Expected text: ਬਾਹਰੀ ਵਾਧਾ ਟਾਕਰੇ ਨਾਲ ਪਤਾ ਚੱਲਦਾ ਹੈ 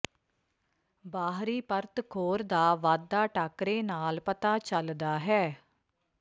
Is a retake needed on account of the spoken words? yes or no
yes